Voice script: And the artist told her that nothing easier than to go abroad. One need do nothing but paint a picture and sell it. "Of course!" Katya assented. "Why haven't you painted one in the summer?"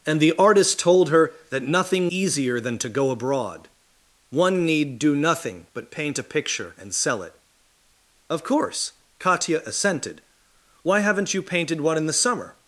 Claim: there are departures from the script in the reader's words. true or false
false